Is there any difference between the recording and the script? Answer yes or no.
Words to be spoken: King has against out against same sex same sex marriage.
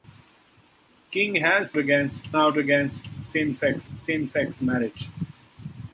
no